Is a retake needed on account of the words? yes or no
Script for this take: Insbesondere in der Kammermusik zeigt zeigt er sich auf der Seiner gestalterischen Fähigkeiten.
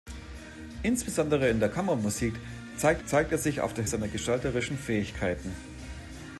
no